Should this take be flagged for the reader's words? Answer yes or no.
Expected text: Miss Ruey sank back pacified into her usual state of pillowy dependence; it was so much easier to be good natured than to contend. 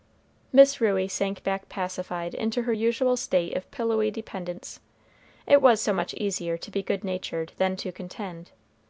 no